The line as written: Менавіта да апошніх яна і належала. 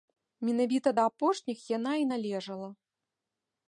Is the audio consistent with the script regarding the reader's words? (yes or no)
yes